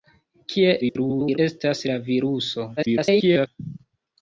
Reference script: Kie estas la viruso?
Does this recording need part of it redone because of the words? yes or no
yes